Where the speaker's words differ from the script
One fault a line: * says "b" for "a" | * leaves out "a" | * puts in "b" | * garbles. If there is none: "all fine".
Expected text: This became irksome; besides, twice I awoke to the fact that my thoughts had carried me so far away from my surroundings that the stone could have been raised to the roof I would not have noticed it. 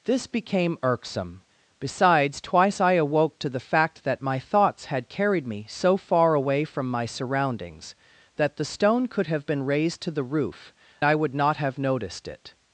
all fine